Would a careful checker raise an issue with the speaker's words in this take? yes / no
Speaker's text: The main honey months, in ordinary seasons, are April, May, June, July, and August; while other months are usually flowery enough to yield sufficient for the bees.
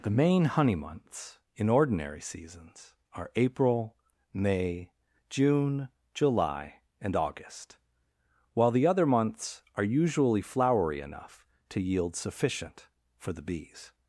yes